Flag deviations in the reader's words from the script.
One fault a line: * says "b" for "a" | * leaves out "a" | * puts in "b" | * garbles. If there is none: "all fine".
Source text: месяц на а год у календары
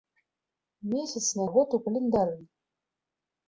all fine